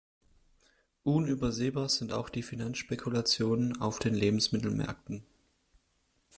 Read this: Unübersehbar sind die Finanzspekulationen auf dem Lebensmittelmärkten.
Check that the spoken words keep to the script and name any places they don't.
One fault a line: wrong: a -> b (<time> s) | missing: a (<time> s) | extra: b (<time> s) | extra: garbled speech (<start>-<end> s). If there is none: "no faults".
extra: auch (2.1 s)
wrong: dem -> den (4.0 s)